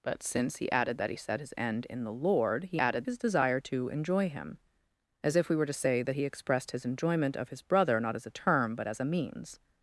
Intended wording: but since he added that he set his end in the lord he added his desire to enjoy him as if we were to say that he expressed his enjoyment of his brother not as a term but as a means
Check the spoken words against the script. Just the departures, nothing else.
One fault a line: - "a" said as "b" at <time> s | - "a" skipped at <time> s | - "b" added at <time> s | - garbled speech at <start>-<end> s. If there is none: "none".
none